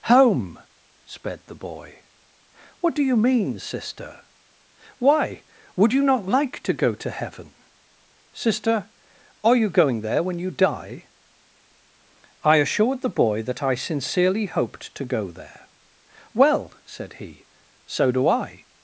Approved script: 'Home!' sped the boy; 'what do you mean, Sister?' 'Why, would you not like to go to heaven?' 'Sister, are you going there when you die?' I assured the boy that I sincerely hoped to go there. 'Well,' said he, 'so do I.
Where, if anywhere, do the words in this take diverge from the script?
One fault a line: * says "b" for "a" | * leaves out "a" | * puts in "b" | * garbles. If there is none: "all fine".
all fine